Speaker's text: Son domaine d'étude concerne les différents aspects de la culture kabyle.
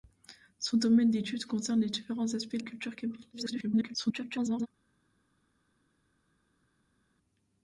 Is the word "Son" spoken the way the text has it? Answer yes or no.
yes